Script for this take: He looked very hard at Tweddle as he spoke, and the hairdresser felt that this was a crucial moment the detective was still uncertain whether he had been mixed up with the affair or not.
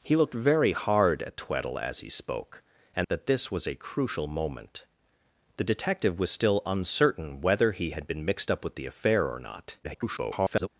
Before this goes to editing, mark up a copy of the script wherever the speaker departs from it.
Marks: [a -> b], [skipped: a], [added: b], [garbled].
He looked very hard at Tweddle as he spoke, and [skipped: the hairdresser felt] that this was a crucial moment the detective was still uncertain whether he had been mixed up with the affair or not. [garbled]